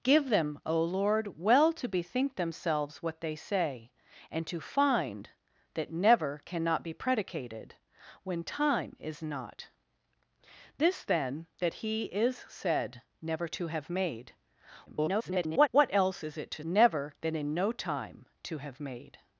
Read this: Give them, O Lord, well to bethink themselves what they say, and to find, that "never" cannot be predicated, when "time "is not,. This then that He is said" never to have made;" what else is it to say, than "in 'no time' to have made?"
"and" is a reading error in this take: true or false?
false